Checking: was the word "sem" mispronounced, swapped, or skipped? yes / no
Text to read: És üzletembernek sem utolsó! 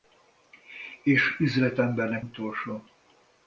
yes